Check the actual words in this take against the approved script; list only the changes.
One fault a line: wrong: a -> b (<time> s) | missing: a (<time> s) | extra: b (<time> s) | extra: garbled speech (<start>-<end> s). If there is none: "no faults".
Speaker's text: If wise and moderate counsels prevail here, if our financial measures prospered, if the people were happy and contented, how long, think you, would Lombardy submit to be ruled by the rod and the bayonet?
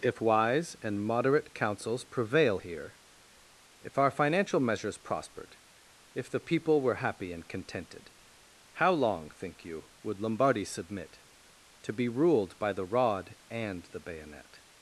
no faults